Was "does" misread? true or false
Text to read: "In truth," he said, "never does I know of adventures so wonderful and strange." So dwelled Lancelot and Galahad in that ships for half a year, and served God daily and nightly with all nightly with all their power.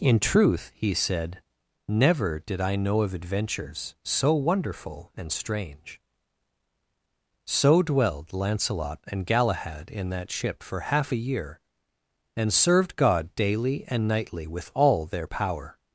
true